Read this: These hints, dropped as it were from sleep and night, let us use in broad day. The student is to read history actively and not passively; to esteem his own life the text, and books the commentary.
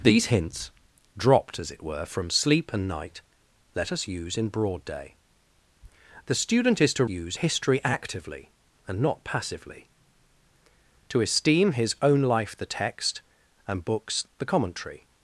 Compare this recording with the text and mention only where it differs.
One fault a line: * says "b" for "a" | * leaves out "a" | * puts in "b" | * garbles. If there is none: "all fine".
* says "use" for "read"